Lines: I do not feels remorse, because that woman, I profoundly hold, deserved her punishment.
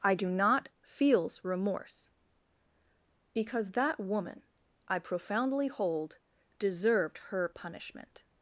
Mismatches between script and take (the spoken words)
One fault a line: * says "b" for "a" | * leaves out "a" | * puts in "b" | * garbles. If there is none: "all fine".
all fine